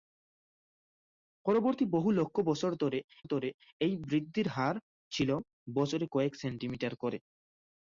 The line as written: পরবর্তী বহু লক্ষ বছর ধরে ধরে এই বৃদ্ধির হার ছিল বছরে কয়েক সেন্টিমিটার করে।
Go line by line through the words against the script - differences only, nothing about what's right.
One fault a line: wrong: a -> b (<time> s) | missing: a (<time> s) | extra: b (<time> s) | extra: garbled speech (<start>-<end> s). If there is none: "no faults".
no faults